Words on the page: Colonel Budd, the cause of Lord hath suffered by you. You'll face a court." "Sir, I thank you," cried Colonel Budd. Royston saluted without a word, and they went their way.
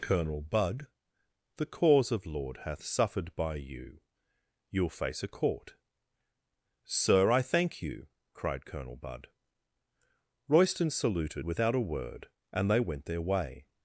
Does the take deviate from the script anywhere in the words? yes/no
no